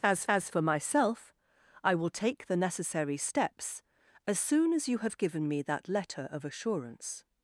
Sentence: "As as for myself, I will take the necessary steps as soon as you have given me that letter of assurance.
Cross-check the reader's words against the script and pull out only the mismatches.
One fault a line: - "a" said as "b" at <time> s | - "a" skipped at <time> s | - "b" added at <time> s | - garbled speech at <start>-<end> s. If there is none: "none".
none